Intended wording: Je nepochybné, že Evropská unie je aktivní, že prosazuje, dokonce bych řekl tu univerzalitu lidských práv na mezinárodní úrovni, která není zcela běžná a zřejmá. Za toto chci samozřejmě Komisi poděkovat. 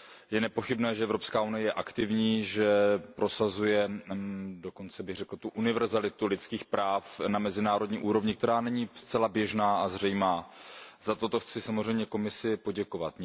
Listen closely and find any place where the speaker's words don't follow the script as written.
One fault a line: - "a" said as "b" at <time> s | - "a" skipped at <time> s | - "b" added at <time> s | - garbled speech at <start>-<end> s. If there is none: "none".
none